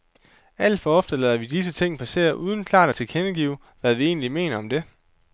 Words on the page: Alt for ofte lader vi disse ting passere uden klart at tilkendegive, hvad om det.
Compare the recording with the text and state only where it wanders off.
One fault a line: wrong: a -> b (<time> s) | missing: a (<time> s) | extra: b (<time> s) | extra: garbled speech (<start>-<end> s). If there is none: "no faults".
extra: vi egentlig mener (3.9 s)